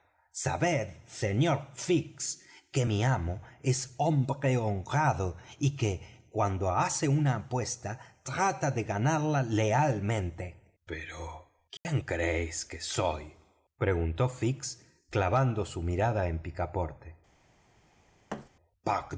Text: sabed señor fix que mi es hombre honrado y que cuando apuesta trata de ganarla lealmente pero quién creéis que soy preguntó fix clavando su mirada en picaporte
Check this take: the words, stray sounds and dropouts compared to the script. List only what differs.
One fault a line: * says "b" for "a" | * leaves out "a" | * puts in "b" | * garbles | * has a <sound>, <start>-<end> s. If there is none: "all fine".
* puts in "amo"
* puts in "hace una"
* has a dropout, 11.8-11.9 s
* has a thud, 18.3-18.5 s